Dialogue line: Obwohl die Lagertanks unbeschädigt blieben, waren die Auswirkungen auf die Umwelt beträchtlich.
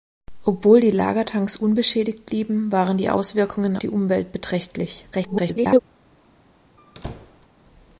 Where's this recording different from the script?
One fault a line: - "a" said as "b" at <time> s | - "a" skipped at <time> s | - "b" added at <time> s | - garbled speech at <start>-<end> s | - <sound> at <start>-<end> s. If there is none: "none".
- "auf" skipped at 3.8 s
- garbled speech at 5.1-5.8 s
- squeak at 6.8-7.5 s